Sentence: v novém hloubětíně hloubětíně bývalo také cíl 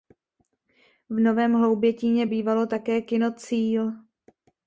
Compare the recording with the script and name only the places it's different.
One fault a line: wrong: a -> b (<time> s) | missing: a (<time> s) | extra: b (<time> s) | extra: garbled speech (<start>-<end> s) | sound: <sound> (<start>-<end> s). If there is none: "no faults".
missing: hloubětíně (2.3 s)
extra: kino (3.0 s)